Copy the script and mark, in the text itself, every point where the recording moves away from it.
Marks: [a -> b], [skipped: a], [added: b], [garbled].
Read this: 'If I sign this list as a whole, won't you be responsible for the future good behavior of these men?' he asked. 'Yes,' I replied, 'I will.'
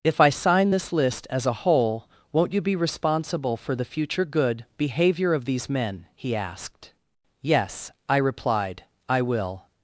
'If I sign this list as a whole, won't you be responsible for the future good behavior of these men?' he asked. 'Yes,' I replied, 'I will.'